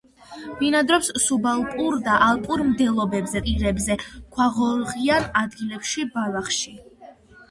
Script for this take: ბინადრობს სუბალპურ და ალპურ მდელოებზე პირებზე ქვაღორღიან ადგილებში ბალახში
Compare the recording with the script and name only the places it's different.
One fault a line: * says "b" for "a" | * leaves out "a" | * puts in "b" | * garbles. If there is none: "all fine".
all fine